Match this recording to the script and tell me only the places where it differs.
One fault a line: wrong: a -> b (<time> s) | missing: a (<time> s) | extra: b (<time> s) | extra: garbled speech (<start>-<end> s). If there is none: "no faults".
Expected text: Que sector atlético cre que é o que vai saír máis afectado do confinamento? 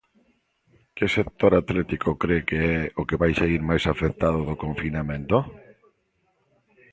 no faults